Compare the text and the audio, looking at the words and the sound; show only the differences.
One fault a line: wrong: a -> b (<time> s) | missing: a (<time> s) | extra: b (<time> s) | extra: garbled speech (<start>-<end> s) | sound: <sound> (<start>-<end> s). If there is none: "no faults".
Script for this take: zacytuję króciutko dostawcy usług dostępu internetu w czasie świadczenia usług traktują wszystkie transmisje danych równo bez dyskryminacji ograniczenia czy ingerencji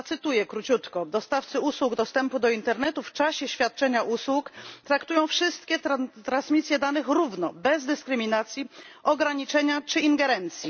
extra: do (2.4 s)